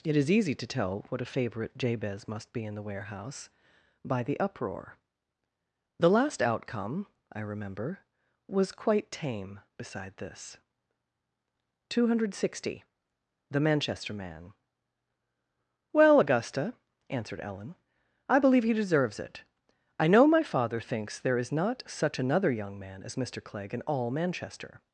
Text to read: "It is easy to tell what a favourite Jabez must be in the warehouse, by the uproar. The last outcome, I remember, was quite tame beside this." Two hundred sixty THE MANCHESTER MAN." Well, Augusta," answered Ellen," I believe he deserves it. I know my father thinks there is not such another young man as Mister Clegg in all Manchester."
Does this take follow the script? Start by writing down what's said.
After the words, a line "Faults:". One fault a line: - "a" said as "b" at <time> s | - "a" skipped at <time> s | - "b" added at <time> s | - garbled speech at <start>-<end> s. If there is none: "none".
"It is easy to tell what a favourite Jabez must be in the warehouse, by the uproar. The last outcome, I remember, was quite tame beside this." Two hundred sixty THE MANCHESTER MAN." Well, Augusta," answered Ellen," I believe he deserves it. I know my father thinks there is not such another young man as Mister Clegg in all Manchester."
Faults:
none